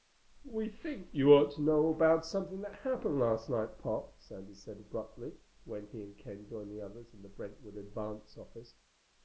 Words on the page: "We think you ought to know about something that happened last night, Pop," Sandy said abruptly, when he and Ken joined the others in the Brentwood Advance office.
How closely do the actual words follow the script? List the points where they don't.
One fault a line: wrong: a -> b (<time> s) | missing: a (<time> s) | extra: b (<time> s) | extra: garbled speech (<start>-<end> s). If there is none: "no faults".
no faults